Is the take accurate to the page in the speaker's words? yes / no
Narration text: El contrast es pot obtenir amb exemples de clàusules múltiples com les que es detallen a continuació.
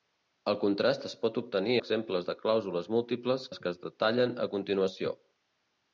no